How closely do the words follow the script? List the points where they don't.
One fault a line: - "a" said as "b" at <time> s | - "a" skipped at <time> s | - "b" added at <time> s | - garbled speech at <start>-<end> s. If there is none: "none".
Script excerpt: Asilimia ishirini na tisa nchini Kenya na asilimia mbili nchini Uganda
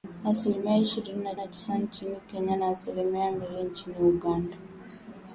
- "na" added at 1.4 s